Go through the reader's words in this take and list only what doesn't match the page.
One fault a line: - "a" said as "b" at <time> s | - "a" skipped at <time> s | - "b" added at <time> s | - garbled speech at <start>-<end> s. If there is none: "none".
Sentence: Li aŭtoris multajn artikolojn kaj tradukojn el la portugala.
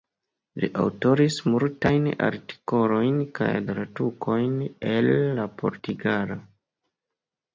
none